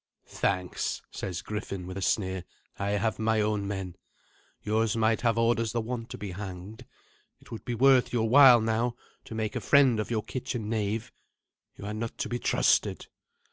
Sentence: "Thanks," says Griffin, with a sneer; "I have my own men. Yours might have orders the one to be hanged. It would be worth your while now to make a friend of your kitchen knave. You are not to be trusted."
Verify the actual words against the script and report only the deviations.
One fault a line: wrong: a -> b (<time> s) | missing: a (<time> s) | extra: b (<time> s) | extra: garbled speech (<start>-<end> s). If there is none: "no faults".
no faults